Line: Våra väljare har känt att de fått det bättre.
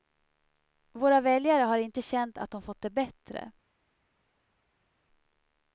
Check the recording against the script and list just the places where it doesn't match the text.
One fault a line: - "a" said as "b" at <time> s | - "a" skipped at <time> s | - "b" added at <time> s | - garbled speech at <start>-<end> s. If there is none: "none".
- "inte" added at 1.8 s